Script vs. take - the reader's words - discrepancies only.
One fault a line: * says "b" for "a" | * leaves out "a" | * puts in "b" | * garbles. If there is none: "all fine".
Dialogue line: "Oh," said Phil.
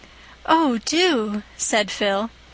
* puts in "do"